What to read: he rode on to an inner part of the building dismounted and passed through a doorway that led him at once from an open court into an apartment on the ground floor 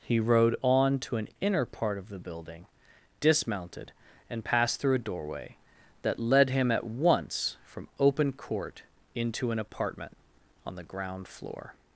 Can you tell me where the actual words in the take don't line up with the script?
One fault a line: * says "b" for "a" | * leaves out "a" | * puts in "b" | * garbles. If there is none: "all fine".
* leaves out "an"